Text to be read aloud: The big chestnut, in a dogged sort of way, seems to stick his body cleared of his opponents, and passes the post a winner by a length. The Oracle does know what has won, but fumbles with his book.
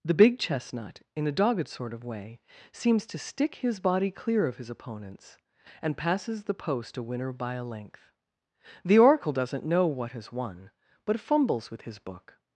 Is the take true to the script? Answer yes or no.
no